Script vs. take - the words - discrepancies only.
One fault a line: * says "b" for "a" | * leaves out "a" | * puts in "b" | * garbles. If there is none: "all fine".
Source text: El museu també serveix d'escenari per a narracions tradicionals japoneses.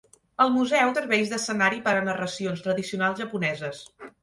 * leaves out "també"